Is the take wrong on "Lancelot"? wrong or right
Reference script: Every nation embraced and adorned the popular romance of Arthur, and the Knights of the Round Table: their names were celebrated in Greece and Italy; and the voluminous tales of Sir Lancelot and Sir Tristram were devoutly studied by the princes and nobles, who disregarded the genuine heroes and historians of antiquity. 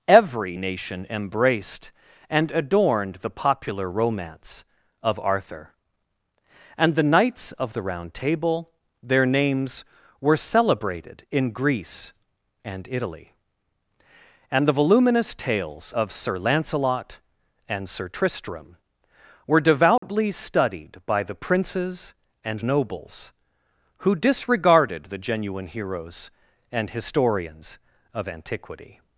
right